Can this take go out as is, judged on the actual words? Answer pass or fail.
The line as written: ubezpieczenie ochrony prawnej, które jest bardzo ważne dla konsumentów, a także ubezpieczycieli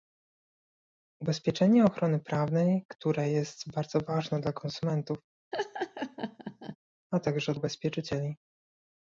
pass